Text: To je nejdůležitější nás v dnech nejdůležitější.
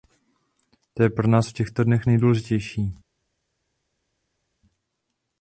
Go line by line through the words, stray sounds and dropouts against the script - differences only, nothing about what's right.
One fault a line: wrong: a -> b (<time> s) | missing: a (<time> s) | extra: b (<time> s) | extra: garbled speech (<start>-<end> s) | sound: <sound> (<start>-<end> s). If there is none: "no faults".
wrong: nejdůležitější -> pro (1.1 s)
extra: těchto (1.5 s)